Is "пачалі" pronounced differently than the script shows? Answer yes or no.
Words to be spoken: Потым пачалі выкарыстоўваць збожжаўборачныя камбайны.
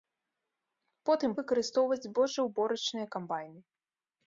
yes